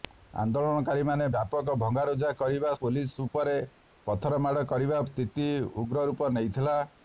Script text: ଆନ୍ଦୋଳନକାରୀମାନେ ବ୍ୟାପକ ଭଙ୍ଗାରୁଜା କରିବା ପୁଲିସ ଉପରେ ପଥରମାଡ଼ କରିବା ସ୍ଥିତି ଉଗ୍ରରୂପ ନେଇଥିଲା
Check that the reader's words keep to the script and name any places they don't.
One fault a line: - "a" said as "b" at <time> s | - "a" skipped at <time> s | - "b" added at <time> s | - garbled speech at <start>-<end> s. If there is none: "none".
none